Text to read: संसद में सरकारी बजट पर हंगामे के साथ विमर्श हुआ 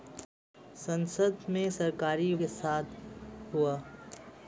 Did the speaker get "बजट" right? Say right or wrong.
wrong